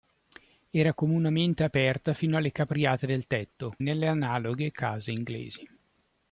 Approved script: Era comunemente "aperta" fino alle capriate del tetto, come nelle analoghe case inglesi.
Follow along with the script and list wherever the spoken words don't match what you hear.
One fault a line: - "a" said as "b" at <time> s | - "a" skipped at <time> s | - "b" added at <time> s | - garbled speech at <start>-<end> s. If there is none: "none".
- "come" skipped at 3.8 s